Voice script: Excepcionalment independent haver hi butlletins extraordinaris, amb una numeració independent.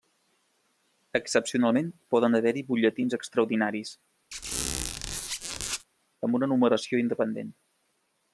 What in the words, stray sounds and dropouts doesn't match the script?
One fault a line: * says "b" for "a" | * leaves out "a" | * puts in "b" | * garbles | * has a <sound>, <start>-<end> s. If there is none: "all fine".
* says "poden" for "independent"
* has a squeak, 4.3-5.8 s